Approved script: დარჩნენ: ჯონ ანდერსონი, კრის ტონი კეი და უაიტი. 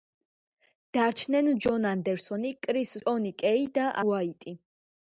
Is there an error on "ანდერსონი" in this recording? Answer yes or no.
no